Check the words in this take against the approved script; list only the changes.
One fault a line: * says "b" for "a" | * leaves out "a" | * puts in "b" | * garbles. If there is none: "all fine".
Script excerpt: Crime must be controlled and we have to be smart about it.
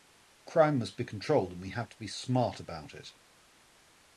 all fine